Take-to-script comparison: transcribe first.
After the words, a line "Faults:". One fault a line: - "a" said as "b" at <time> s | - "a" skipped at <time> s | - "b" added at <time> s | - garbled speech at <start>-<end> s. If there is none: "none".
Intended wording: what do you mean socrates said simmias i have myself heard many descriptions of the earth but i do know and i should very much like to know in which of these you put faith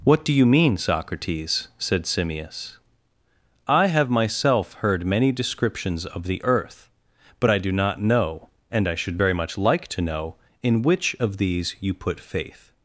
what do you mean socrates said simmias i have myself heard many descriptions of the earth but i do not know and i should very much like to know in which of these you put faith
Faults:
- "not" added at 7.7 s